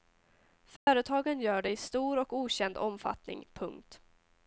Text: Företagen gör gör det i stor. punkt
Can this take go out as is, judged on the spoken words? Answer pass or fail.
fail